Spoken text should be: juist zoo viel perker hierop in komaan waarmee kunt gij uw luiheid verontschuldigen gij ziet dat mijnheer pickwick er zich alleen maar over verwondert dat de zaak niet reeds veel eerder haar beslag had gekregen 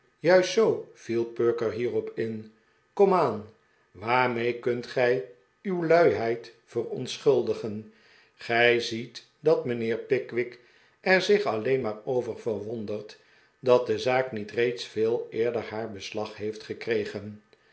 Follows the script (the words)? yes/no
no